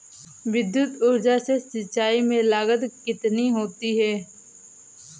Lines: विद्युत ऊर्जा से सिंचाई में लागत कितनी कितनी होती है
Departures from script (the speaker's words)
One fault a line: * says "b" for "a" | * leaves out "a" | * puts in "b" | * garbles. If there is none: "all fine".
* leaves out "कितनी"